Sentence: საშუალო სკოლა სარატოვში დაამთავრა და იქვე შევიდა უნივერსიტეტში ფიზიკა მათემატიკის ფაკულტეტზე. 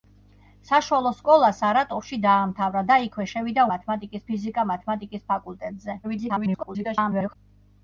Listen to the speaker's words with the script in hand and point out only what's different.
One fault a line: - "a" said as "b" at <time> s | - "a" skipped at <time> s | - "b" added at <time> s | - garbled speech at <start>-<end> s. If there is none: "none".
- "უნივერსიტეტში" said as "მათემატიკის" at 3.7 s
- garbled speech at 6.0-7.4 s